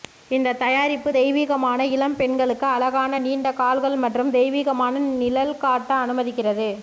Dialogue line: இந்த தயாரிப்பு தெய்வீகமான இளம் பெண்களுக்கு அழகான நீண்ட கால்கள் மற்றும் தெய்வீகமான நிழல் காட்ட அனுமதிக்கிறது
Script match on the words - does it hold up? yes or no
yes